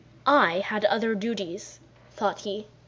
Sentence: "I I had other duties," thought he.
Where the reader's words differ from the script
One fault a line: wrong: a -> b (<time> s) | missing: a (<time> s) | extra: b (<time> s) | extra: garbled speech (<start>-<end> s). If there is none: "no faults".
missing: I (0.6 s)